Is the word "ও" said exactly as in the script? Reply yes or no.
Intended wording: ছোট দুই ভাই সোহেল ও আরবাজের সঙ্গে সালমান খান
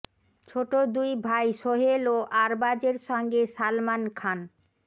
yes